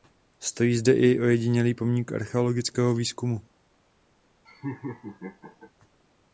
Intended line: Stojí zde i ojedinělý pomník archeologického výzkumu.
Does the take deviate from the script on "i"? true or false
false